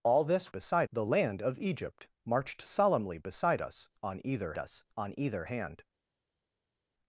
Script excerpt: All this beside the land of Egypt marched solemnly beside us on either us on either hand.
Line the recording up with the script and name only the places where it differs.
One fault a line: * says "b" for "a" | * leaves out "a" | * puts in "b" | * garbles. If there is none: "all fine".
all fine